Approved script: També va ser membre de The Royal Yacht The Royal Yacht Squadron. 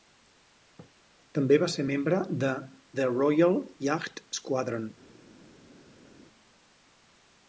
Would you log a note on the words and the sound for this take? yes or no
yes